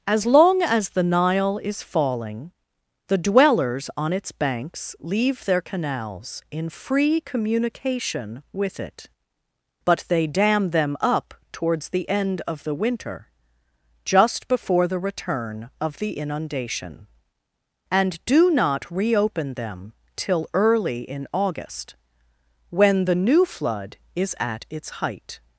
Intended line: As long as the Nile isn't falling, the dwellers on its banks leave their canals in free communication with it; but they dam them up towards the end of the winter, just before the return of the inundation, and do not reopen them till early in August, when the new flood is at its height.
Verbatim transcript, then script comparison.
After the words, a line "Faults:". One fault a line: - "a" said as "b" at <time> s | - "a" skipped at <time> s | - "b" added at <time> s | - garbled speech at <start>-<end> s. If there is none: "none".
As long as the Nile is falling, the dwellers on its banks leave their canals in free communication with it; but they dam them up towards the end of the winter, just before the return of the inundation, and do not reopen them till early in August, when the new flood is at its height.
Faults:
- "isn't" said as "is" at 1.6 s